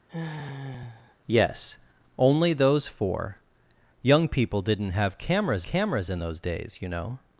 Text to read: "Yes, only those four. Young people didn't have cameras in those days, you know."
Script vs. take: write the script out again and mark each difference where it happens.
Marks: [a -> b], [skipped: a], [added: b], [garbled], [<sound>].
[sigh] "Yes, only those four. Young people didn't have cameras [added: cameras] in those days, you know."